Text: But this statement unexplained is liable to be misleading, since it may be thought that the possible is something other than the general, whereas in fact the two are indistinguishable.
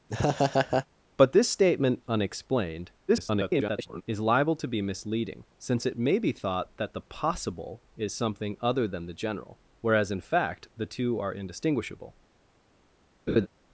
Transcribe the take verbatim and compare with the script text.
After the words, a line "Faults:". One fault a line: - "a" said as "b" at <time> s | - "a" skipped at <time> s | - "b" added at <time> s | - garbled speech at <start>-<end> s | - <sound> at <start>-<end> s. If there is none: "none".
But this statement unexplained [garbled] is liable to be misleading, since it may be thought that the possible is something other than the general, whereas in fact the two are indistinguishable.
Faults:
- laugh at 0.1-0.9 s
- garbled speech at 3.1-4.0 s
- laugh at 13.3-13.5 s